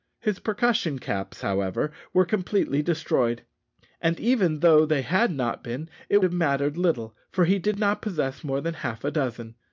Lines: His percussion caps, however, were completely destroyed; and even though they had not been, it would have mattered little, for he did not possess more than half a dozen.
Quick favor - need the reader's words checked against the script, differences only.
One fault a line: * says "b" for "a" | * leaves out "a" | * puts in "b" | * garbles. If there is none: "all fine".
* leaves out "would"